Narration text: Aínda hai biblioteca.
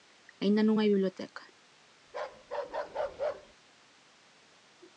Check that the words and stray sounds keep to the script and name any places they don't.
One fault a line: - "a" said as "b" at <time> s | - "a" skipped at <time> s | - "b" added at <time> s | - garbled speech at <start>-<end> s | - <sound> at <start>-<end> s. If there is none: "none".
- "non" added at 0.7 s
- bark at 2.1-3.5 s